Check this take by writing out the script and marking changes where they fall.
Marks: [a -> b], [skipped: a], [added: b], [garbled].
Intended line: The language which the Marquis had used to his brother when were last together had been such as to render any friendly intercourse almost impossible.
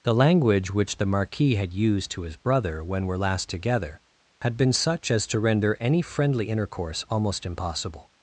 The language which the Marquis had used to his brother when were last together had been such as to render any friendly intercourse almost impossible.